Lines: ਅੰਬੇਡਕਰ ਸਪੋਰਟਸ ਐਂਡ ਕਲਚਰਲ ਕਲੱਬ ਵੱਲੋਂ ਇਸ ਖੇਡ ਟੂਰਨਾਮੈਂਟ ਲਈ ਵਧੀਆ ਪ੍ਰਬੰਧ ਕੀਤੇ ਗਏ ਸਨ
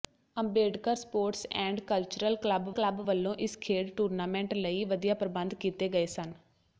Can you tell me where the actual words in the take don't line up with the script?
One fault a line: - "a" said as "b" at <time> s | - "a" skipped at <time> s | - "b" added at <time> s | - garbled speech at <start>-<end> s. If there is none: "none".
- "ਕਲੱਬ" added at 2.7 s